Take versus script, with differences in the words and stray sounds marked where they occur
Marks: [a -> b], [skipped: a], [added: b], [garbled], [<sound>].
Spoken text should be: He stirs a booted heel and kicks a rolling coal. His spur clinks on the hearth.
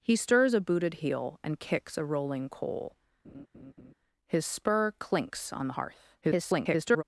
He stirs a booted heel and kicks a rolling coal. [laugh] His spur clinks on the hearth. [garbled]